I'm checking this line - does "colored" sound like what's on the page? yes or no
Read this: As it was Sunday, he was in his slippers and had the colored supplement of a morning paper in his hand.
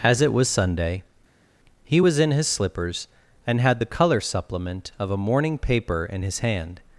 no